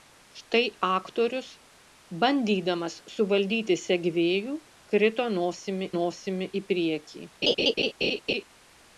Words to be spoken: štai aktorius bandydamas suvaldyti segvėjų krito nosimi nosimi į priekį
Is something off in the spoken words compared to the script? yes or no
no